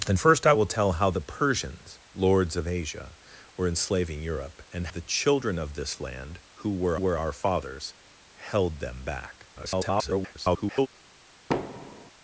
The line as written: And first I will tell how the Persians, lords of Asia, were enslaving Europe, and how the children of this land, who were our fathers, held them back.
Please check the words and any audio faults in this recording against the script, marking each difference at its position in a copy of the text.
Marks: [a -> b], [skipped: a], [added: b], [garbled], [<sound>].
And first I will tell how the Persians, lords of Asia, were enslaving Europe, and [skipped: how] the children of this land, who were [added: were] our fathers, held them back. [garbled] [thud]